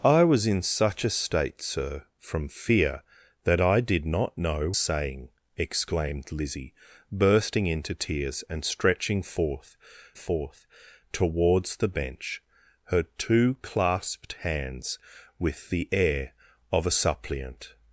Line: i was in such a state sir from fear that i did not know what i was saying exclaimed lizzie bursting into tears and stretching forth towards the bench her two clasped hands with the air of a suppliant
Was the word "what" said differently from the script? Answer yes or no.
yes